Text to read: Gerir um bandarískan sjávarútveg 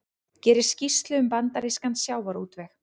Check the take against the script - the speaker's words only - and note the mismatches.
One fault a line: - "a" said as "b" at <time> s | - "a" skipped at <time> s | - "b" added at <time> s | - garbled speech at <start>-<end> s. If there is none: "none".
- "skýrslu" added at 0.7 s